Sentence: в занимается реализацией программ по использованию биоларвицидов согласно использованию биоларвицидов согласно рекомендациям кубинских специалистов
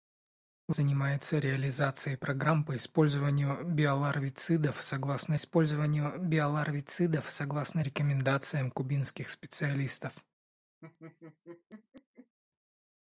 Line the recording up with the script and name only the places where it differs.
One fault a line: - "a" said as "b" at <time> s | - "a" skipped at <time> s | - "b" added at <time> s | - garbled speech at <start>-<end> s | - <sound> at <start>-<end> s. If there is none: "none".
- laugh at 10.8-12.4 s